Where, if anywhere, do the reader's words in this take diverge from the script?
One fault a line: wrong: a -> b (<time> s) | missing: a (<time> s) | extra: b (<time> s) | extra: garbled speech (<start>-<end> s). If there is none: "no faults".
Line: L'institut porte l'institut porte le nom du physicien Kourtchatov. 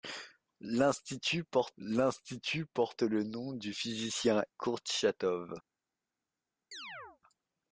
no faults